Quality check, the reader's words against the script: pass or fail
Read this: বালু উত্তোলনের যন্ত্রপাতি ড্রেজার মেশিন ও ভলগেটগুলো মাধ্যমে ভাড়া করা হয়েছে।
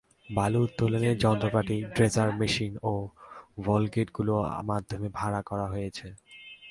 pass